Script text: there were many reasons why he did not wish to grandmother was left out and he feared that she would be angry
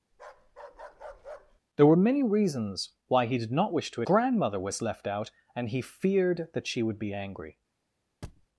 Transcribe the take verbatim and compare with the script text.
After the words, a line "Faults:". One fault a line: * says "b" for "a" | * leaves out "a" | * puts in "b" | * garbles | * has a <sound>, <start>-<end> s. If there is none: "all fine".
there were many reasons why he did not wish to grandmother was left out and he feared that she would be angry
Faults:
* has a bark, 0.1-1.6 s
* has a thud, 8.2-8.5 s